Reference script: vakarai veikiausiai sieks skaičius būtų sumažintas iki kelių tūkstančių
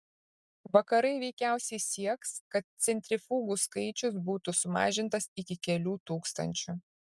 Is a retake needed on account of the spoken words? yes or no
yes